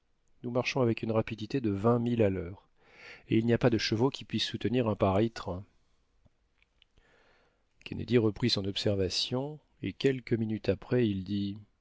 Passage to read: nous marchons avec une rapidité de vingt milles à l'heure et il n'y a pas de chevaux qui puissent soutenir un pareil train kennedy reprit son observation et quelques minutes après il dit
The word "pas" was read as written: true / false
true